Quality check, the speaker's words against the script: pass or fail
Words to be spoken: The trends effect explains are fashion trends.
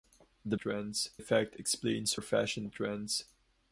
pass